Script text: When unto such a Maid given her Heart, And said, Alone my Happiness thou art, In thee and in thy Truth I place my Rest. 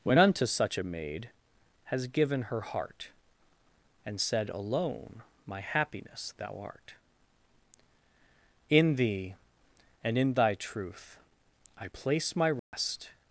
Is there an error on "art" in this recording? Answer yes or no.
no